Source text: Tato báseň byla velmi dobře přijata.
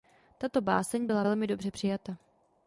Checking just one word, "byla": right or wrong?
right